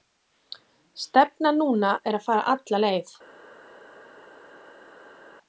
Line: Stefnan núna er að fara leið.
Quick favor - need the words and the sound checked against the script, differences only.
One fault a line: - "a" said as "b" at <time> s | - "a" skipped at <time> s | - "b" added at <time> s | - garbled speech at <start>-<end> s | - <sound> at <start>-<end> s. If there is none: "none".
- "alla" added at 2.5 s